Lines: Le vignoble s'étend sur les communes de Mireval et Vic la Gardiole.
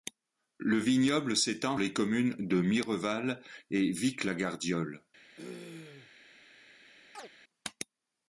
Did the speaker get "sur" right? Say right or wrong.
wrong